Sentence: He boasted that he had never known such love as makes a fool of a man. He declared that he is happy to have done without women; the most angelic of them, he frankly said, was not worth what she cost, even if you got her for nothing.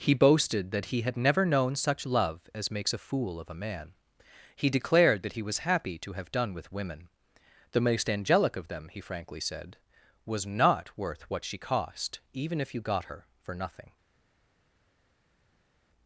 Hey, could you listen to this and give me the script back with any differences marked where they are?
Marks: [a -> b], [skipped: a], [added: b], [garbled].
He boasted that he had never known such love as makes a fool of a man. He declared that he [is -> was] happy to have done [without -> with] women; the most angelic of them, he frankly said, was not worth what she cost, even if you got her for nothing.